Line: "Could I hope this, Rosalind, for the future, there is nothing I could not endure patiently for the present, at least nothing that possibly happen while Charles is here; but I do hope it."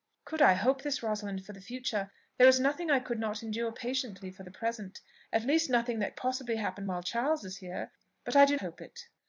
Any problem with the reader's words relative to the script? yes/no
no